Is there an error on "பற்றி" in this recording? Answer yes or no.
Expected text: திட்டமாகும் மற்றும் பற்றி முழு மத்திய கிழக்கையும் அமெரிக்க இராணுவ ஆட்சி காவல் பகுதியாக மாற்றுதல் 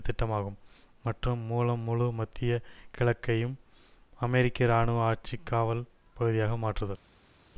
yes